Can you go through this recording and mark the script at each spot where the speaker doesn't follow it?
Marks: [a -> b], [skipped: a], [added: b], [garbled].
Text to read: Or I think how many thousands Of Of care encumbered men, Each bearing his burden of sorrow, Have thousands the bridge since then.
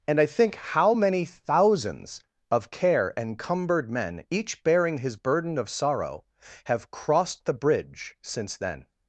[Or -> And] I think how many thousands Of [skipped: Of] care encumbered men, Each bearing his burden of sorrow, Have [thousands -> crossed] the bridge since then.